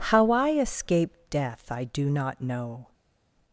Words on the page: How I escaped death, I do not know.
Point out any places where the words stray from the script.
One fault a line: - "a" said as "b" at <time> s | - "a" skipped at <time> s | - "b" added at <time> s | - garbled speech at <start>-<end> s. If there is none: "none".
none